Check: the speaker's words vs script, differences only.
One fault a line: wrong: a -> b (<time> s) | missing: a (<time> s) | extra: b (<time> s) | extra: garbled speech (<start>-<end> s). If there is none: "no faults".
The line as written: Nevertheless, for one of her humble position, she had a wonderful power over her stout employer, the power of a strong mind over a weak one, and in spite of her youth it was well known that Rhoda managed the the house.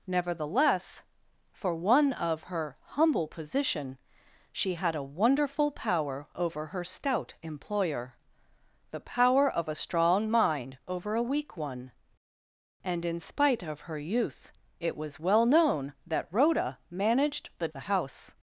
no faults